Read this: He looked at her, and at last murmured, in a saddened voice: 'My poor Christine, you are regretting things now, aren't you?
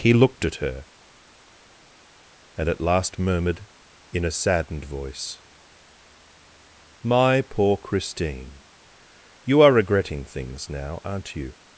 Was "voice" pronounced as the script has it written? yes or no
yes